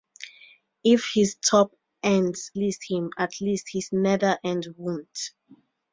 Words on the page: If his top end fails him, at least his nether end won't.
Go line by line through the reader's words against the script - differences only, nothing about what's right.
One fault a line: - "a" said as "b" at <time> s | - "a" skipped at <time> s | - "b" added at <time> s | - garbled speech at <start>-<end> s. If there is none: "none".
- "fails" said as "least" at 2.5 s